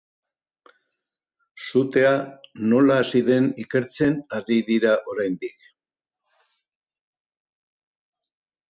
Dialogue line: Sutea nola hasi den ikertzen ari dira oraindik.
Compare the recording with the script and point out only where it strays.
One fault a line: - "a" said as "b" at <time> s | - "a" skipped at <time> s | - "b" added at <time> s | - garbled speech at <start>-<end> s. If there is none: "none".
none